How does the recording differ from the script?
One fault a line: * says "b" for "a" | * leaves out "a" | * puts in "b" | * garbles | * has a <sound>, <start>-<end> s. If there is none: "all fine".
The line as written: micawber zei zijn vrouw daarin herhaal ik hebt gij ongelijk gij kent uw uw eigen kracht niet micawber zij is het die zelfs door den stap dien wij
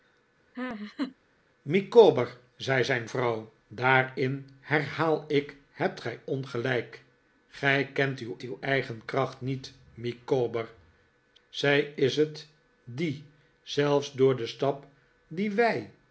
* has a laugh, 0.5-1.2 s